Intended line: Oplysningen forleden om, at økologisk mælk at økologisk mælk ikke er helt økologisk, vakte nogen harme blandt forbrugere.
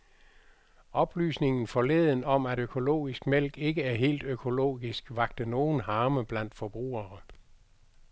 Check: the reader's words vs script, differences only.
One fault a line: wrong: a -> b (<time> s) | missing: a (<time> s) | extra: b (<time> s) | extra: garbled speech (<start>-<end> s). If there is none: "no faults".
missing: at økologisk mælk (3.6 s)